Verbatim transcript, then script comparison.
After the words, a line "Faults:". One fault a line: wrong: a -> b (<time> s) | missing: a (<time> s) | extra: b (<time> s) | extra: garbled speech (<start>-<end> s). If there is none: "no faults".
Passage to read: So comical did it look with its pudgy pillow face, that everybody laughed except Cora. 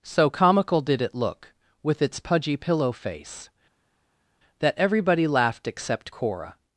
So comical did it look with its pudgy pillow face, that everybody laughed except Cora.
Faults:
no faults